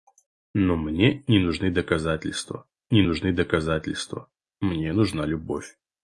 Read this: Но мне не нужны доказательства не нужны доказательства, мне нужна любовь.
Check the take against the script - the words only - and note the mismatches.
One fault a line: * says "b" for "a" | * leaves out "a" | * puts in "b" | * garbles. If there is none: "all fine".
all fine